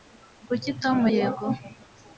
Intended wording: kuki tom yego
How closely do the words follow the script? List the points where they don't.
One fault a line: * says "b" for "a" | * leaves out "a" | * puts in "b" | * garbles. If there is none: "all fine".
all fine